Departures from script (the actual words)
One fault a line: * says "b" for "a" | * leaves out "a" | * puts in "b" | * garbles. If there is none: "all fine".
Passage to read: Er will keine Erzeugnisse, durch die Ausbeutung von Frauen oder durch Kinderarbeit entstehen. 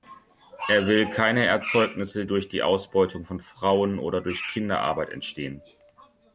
all fine